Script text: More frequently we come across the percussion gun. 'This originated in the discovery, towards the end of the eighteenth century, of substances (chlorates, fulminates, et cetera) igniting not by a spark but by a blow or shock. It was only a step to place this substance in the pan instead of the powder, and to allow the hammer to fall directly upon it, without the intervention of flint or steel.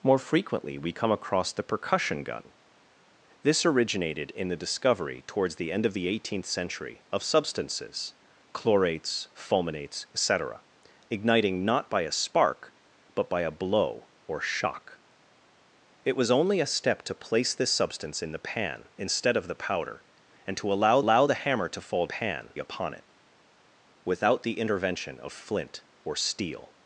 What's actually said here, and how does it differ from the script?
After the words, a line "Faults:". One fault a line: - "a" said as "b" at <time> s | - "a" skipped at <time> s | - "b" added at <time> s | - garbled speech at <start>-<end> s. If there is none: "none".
More frequently we come across the percussion gun. 'This originated in the discovery, towards the end of the eighteenth century, of substances (chlorates, fulminates, et cetera) igniting not by a spark but by a blow or shock. It was only a step to place this substance in the pan instead of the powder, and to allow allow the hammer to fall pan upon it, without the intervention of flint or steel.
Faults:
- "allow" added at 21.0 s
- "directly" said as "pan" at 22.0 s